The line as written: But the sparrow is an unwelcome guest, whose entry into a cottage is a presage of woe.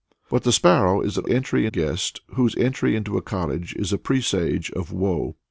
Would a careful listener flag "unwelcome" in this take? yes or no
yes